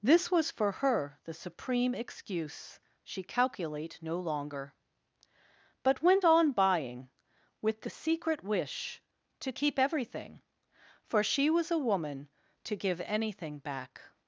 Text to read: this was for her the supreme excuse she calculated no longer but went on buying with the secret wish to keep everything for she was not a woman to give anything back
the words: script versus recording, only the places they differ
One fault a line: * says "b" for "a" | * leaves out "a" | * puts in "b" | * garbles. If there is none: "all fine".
* says "calculate" for "calculated"
* leaves out "not"